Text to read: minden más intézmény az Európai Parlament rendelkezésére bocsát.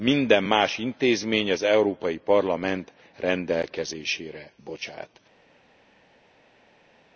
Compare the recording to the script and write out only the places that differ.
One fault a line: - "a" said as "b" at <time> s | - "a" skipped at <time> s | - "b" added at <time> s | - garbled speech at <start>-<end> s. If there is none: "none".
none